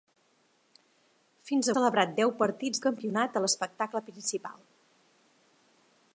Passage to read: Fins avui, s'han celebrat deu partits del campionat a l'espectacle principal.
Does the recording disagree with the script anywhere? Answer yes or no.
yes